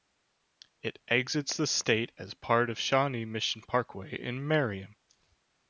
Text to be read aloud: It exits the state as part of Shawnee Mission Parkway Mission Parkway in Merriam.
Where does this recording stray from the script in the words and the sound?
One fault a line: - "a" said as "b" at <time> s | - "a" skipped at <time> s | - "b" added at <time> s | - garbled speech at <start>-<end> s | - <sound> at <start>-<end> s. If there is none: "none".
- "Mission Parkway" skipped at 4.2 s